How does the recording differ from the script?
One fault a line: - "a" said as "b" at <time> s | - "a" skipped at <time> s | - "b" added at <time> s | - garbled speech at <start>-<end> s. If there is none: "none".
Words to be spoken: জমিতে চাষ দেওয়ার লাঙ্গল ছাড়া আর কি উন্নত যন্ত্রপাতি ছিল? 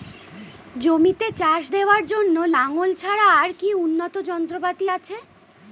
- "জন্য" added at 2.1 s
- "ছিল" said as "আছে" at 4.9 s